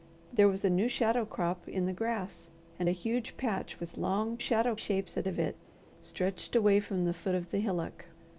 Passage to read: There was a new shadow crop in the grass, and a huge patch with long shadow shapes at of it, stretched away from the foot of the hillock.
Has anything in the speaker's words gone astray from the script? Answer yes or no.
no